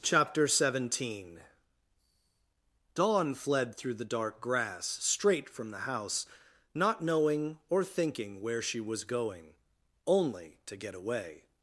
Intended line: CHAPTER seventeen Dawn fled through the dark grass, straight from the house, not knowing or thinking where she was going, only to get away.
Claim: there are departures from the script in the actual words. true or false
false